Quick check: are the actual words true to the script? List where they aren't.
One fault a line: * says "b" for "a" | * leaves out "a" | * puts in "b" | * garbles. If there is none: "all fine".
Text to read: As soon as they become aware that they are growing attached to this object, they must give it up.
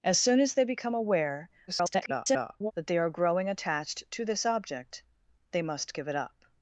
* garbles